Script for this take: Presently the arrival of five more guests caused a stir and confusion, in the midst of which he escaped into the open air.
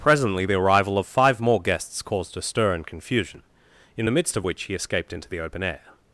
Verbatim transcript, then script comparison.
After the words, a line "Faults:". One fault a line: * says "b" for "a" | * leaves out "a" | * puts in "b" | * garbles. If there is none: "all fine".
Presently the arrival of five more guests caused a stir and confusion, in the midst of which he escaped into the open air.
Faults:
all fine